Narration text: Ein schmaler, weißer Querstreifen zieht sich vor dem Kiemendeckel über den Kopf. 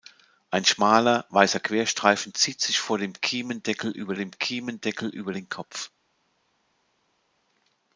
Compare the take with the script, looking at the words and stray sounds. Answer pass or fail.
fail